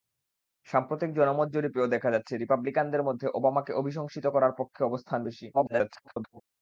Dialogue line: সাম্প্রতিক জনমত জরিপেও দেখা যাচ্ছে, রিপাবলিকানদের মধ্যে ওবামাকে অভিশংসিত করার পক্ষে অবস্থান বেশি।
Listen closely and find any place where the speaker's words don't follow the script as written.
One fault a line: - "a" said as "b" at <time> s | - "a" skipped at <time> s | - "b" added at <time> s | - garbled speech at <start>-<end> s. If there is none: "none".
- garbled speech at 5.5-6.4 s